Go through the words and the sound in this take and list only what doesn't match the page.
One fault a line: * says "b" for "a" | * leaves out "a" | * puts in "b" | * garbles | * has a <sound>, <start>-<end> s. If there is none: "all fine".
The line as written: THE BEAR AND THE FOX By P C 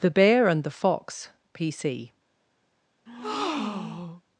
* leaves out "By"
* has a breath, 3.1-4.2 s